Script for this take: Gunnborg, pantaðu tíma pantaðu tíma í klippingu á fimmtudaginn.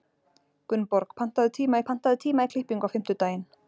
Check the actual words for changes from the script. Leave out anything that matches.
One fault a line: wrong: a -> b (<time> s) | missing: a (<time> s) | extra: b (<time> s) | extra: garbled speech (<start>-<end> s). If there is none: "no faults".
no faults